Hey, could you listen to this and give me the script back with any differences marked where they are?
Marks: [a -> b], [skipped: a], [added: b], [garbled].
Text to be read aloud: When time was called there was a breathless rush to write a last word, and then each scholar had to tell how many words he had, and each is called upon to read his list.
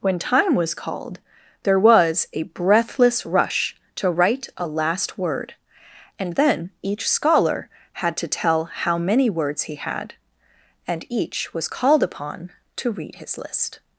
When time was called there was a breathless rush to write a last word, and then each scholar had to tell how many words he had, and each [is -> was] called upon to read his list.